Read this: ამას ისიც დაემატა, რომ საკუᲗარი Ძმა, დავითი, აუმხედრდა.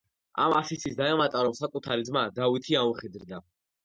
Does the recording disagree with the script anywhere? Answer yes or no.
no